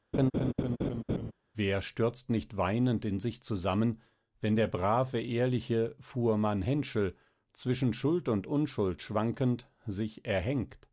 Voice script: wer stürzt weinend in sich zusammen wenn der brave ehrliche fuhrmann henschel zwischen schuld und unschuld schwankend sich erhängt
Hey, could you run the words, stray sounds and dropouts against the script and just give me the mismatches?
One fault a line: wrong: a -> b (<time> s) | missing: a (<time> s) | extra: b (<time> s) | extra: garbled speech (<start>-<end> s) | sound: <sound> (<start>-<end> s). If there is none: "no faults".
sound: laugh (0.1-1.3 s)
extra: nicht (2.3 s)